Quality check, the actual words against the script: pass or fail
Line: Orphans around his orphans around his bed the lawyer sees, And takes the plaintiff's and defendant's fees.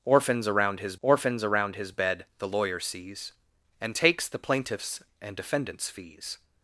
pass